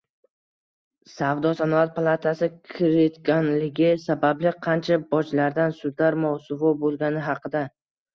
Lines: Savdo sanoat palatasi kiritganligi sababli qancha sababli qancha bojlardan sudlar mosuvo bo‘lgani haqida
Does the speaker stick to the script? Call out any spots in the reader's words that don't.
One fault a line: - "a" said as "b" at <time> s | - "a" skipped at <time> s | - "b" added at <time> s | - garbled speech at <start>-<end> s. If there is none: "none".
- "sababli qancha" skipped at 5.0 s